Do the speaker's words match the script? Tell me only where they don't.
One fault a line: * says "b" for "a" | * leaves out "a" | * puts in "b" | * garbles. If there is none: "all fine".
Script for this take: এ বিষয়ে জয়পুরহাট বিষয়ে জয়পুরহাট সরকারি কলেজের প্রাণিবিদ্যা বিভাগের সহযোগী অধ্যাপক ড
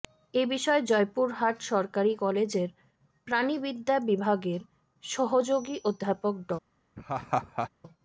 * leaves out "বিষয়ে জয়পুরহাট"